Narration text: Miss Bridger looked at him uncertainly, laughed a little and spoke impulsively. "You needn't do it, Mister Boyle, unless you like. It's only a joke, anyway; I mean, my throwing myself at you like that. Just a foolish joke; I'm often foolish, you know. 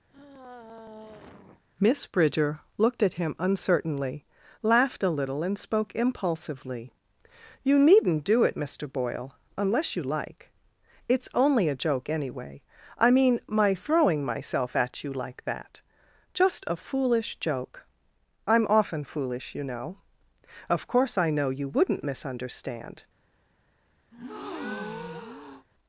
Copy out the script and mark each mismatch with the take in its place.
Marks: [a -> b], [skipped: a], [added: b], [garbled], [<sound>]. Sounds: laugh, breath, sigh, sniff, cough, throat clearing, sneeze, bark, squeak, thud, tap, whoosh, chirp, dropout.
[sigh] Miss Bridger looked at him uncertainly, laughed a little and spoke impulsively. "You needn't do it, Mister Boyle, unless you like. It's only a joke, anyway; I mean, my throwing myself at you like that. Just a foolish joke; I'm often foolish, you know. [added: Of course I know you wouldn't misunderstand] [breath]